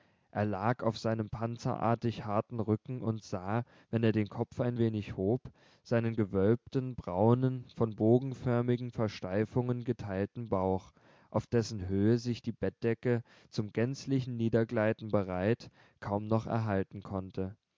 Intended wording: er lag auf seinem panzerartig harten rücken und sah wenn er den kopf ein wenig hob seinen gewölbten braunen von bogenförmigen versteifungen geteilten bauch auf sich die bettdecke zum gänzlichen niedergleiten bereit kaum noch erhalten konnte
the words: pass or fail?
fail